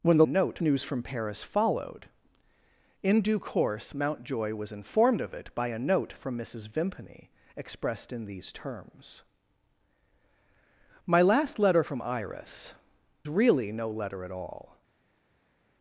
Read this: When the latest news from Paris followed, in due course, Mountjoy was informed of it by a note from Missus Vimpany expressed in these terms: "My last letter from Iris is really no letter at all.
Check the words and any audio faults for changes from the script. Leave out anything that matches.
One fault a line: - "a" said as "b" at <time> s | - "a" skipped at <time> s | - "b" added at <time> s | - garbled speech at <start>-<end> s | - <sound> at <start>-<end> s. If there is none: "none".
- "latest" said as "note" at 0.2 s
- "is" skipped at 12.7 s